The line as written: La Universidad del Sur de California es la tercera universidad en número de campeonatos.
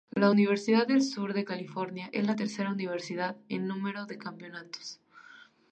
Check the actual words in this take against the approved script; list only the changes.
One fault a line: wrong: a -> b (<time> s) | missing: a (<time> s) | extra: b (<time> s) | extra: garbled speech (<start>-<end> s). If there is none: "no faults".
no faults